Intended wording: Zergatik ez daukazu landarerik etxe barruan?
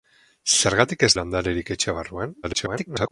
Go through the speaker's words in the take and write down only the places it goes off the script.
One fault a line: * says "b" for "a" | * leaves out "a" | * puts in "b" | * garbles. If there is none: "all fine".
* leaves out "daukazu"
* garbles